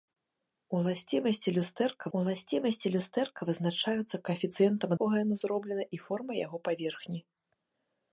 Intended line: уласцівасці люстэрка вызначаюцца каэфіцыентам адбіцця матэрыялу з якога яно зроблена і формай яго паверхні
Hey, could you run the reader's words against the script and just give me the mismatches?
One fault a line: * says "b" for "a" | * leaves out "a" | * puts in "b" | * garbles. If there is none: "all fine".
* puts in "уласцівасці люстэрка"
* leaves out "адбіцця матэрыялу з"